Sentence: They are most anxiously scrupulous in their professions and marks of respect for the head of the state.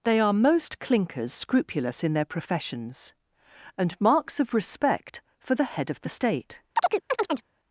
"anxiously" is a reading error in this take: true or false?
true